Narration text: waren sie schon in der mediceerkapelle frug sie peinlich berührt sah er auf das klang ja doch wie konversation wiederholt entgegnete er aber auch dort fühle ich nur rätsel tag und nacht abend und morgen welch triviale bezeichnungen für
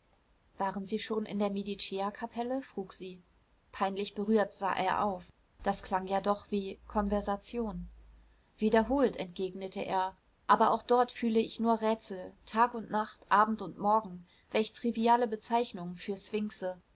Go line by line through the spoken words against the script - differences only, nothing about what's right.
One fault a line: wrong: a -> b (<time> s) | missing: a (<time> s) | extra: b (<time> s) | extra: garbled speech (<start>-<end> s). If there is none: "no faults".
no faults